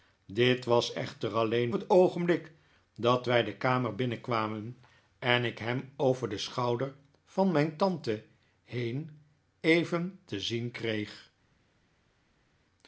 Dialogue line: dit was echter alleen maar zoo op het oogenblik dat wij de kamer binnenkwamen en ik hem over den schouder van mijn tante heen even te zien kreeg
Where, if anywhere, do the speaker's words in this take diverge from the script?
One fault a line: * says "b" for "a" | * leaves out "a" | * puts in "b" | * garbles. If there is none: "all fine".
* leaves out "maar zoo op"